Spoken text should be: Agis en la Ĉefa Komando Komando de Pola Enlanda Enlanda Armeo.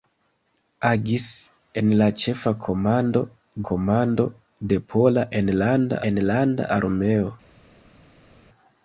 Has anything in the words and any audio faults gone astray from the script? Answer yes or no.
no